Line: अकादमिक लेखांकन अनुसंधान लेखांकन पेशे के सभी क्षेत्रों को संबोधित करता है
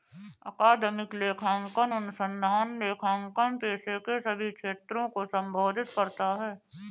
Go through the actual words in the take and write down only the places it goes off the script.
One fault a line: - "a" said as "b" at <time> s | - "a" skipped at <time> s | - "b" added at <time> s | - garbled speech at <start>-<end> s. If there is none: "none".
none